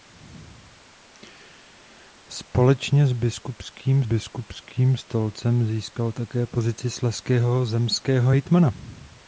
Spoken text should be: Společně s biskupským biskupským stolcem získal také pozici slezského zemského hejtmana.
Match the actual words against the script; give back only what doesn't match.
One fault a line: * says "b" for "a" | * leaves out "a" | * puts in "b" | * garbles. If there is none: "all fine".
all fine